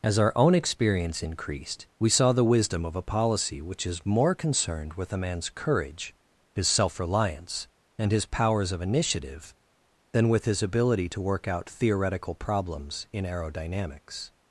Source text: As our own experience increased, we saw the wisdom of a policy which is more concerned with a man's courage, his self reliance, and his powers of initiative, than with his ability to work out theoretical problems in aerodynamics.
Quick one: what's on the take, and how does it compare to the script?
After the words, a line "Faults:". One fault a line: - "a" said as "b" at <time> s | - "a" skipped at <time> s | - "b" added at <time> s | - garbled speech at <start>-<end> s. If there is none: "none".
As our own experience increased, we saw the wisdom of a policy which is more concerned with a man's courage, his self reliance, and his powers of initiative, than with his ability to work out theoretical problems in aerodynamics.
Faults:
none